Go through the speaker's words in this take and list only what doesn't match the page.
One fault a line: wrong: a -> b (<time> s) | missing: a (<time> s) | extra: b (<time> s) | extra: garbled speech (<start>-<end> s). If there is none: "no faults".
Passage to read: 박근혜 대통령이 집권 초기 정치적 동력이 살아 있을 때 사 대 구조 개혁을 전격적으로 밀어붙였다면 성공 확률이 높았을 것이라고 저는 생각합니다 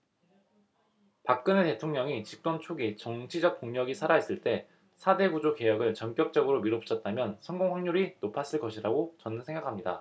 no faults